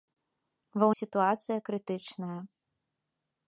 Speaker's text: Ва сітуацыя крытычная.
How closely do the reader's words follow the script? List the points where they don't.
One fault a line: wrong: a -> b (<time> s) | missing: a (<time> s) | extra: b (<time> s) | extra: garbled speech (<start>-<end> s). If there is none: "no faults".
no faults